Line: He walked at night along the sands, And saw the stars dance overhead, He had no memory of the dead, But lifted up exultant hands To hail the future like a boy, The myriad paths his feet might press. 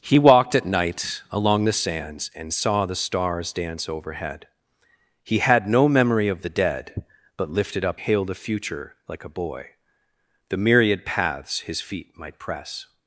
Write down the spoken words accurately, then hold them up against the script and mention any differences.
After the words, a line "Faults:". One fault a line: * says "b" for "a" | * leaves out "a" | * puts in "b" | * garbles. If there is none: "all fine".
He walked at night along the sands, And saw the stars dance overhead, He had no memory of the dead, But lifted up hail the future like a boy, The myriad paths his feet might press.
Faults:
* leaves out "exultant hands To"